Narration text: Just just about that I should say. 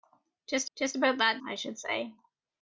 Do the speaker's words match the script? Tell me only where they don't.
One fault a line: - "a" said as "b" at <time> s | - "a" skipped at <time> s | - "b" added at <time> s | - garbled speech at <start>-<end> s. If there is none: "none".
none